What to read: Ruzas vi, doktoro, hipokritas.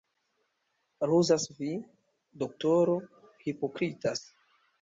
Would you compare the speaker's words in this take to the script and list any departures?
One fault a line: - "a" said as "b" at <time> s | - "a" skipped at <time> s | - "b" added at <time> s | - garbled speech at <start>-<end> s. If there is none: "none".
none